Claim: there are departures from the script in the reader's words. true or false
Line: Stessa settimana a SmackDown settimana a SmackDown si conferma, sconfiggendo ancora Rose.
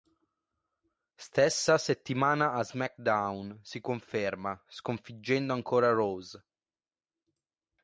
true